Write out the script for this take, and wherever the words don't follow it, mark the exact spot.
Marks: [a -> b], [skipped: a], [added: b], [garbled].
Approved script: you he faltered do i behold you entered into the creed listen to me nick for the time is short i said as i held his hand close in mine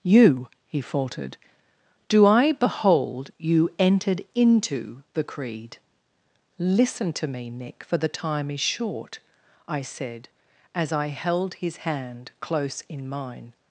you he faltered do i behold you entered into the creed listen to me nick for the time is short i said as i held his hand close in mine